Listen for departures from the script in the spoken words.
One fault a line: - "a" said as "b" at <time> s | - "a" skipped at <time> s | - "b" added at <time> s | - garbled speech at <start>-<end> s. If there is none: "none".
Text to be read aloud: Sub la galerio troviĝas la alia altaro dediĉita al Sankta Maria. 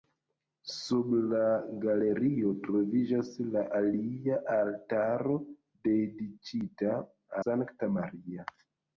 - "al" skipped at 7.0 s